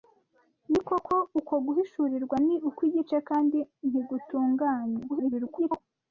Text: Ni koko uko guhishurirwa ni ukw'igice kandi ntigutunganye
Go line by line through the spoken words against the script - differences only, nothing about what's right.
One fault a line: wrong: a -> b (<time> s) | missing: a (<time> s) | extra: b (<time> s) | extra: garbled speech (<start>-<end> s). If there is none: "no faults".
extra: garbled speech (5.1-5.8 s)